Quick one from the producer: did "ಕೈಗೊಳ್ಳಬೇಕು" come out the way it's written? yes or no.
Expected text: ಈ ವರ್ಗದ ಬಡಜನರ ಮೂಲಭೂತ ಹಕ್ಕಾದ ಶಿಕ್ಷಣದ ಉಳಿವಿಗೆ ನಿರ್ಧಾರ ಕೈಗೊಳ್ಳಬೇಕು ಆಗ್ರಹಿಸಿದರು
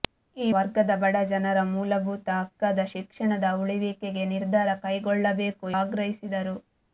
yes